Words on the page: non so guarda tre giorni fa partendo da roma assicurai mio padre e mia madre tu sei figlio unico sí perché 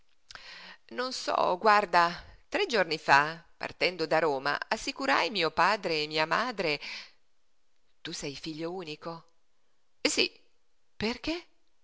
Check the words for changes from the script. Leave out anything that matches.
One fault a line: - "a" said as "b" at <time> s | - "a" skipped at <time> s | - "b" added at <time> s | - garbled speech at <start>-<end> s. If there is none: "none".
none